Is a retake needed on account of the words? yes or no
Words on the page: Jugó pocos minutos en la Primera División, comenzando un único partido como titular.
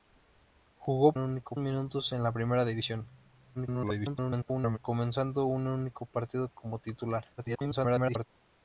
yes